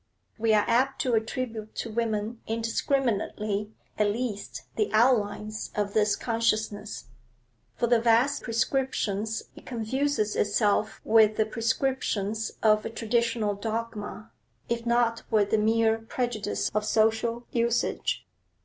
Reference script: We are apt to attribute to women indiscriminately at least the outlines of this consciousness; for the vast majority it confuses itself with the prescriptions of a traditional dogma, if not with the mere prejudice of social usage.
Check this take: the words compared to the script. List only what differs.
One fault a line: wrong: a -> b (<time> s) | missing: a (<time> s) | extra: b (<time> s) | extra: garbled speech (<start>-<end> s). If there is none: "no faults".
wrong: majority -> prescriptions (8.4 s)